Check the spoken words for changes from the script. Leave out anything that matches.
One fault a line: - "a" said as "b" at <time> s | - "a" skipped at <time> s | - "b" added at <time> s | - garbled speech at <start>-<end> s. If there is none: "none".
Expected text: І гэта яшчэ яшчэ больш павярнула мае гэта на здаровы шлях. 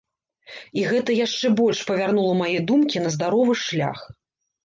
- "яшчэ" skipped at 1.5 s
- "гэта" said as "думкі" at 2.7 s